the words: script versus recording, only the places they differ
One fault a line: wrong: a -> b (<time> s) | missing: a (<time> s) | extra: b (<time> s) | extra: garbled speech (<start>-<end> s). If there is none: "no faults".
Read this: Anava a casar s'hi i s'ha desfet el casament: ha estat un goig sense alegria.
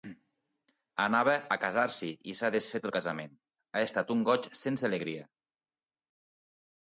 no faults